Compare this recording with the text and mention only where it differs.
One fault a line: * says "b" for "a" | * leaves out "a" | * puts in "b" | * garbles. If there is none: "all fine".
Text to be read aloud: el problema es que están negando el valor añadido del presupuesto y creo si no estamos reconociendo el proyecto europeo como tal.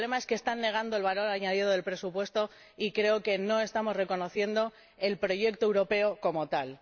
* says "que" for "si"